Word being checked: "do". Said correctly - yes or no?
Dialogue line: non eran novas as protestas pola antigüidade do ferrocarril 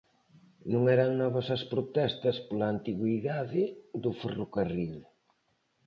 yes